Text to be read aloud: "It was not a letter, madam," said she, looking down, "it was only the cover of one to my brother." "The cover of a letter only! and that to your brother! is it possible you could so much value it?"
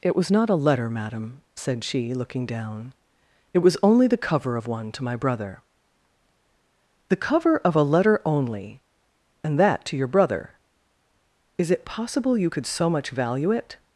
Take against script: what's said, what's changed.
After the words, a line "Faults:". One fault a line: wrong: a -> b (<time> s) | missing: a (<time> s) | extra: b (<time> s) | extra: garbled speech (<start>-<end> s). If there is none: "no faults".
"It was not a letter, madam," said she, looking down, "it was only the cover of one to my brother." "The cover of a letter only! and that to your brother! is it possible you could so much value it?"
Faults:
no faults